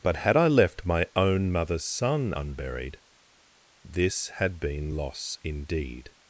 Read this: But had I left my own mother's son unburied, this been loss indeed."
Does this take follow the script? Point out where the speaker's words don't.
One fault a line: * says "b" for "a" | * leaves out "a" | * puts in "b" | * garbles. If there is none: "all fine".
* puts in "had"